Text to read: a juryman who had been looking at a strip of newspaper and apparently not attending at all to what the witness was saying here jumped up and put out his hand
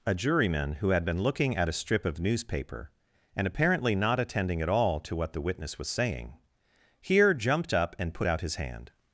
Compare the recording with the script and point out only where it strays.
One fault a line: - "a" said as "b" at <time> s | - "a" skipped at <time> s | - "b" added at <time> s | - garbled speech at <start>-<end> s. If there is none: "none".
none